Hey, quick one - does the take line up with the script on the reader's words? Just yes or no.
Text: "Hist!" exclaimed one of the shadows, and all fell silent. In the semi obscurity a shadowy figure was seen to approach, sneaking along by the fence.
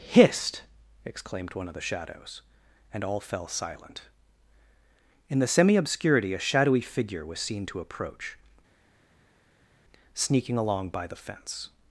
yes